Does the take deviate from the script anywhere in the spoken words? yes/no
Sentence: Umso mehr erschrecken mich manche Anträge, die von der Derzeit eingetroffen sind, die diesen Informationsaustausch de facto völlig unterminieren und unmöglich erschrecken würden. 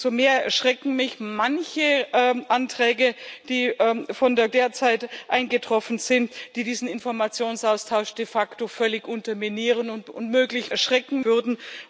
no